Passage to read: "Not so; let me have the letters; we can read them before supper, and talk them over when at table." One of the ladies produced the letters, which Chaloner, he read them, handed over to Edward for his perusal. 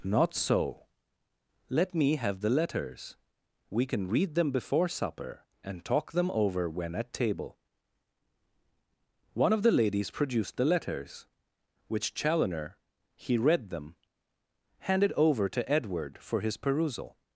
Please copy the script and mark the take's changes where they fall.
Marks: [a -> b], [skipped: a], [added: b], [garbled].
"Not so; let me have the letters; we can read them before supper, and talk them over when at table." One of the ladies produced the letters, which Chaloner, he read them, handed over to Edward for his perusal.